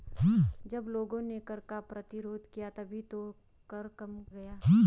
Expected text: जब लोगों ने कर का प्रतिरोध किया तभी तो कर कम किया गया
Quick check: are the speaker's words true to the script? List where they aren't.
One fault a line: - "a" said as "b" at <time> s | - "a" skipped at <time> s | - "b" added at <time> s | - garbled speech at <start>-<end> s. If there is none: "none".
- "किया" skipped at 4.2 s